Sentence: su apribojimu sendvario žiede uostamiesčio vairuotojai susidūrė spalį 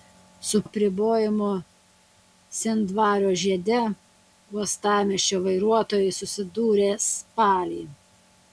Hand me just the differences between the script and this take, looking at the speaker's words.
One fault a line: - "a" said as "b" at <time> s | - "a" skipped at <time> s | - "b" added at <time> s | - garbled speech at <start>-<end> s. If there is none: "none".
none